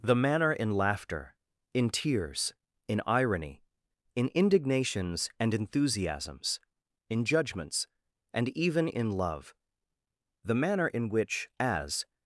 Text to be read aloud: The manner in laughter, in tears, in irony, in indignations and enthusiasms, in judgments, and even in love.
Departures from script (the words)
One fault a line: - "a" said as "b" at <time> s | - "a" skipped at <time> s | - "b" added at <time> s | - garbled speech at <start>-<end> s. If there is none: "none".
- "The manner in which as" added at 10.4 s